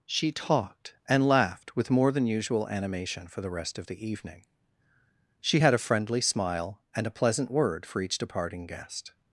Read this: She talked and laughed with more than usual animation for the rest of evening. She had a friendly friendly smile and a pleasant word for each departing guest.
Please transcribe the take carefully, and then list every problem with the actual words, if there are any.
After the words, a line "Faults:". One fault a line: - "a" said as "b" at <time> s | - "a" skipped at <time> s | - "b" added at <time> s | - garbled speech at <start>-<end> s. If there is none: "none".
She talked and laughed with more than usual animation for the rest of the evening. She had a friendly smile and a pleasant word for each departing guest.
Faults:
- "the" added at 3.9 s
- "friendly" skipped at 6.2 s